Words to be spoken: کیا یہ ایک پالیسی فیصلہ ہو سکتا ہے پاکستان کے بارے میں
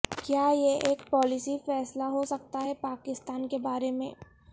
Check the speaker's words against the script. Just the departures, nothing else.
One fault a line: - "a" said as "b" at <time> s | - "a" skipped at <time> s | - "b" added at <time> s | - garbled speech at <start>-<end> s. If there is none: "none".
none